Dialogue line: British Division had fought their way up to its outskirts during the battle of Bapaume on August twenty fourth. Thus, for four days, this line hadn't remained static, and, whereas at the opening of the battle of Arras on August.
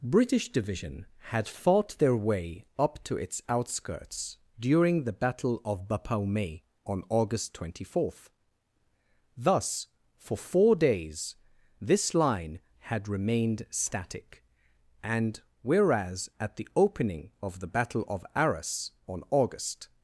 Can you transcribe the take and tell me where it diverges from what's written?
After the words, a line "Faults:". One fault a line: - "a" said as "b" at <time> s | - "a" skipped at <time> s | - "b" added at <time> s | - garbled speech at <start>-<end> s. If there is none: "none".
British Division had fought their way up to its outskirts during the battle of Bapaume on August twenty fourth. Thus, for four days, this line had remained static, and, whereas at the opening of the battle of Arras on August.
Faults:
- "hadn't" said as "had" at 12.8 s